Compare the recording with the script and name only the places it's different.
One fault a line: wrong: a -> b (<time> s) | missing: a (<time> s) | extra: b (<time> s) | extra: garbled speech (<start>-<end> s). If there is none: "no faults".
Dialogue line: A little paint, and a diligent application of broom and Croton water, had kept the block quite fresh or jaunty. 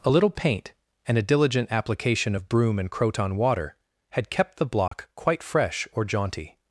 no faults